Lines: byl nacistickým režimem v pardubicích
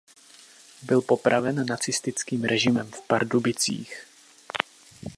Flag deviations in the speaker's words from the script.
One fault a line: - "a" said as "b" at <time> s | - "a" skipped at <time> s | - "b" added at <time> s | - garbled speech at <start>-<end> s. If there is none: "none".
- "popraven" added at 1.0 s